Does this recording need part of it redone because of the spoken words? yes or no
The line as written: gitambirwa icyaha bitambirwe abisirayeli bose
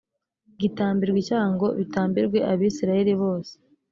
yes